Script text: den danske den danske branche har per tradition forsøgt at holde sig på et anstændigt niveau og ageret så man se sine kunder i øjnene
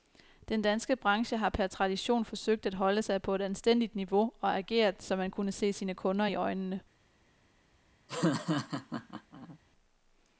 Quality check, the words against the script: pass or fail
fail